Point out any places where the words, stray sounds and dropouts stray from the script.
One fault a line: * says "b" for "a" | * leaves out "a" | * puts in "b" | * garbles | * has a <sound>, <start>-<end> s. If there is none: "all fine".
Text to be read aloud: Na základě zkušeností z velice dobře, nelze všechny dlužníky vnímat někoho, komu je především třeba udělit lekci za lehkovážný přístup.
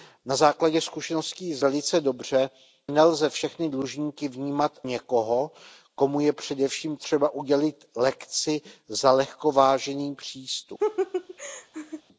* has a laugh, 10.8-12.0 s